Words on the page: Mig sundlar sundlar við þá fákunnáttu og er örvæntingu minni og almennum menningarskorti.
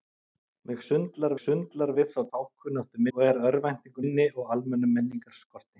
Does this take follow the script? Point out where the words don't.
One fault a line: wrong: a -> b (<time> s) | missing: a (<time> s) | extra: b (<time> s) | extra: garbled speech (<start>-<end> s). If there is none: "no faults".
no faults